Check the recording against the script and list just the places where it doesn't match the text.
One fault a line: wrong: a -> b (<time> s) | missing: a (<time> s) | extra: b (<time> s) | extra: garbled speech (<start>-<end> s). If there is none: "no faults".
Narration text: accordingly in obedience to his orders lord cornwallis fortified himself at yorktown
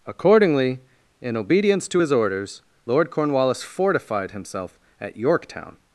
no faults